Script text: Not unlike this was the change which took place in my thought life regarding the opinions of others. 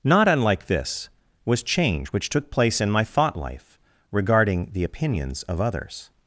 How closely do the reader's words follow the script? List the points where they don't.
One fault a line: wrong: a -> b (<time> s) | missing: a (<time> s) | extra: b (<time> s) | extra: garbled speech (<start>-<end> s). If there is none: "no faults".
missing: the (1.6 s)